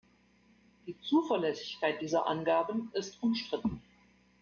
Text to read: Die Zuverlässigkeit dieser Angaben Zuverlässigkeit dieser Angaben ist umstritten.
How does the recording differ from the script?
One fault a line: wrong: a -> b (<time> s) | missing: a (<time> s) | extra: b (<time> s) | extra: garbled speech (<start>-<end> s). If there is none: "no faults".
missing: Zuverlässigkeit dieser Angaben (2.9 s)